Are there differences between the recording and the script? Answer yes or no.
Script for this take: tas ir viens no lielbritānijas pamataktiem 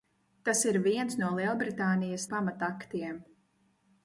no